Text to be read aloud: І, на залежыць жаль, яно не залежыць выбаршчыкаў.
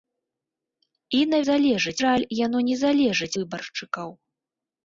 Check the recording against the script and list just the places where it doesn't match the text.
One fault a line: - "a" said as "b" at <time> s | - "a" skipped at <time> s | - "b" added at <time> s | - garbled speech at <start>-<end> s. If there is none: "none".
none